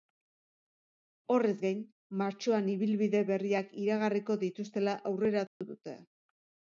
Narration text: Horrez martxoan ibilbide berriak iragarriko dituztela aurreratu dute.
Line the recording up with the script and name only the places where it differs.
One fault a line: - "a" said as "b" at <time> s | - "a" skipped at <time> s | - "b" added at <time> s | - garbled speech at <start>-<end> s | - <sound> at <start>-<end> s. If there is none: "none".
- "gain" added at 1.6 s
- dropout at 5.5-5.6 s